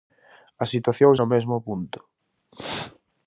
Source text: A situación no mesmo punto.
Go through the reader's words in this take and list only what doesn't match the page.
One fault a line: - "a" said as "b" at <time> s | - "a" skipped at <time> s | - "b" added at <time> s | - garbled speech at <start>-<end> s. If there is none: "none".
none